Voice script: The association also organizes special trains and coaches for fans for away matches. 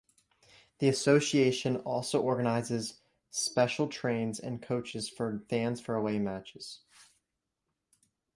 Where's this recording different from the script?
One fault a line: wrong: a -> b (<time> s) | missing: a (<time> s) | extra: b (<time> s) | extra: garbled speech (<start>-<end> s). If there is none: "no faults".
no faults